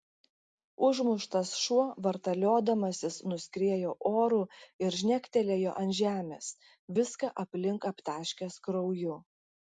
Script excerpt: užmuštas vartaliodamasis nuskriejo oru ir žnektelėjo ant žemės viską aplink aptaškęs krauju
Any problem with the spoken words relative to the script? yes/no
yes